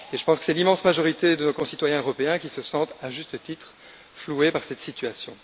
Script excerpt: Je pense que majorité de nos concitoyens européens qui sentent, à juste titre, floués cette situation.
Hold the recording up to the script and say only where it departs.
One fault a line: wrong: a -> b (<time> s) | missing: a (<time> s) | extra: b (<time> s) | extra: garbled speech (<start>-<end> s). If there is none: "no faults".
extra: c'est l'immense (0.4 s)
extra: se (2.5 s)
extra: par (4.5 s)